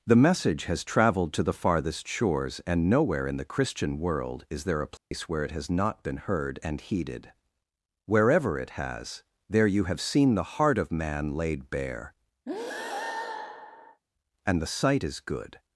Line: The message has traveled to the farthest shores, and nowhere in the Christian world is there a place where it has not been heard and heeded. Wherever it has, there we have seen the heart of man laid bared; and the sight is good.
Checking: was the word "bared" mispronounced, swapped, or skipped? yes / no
yes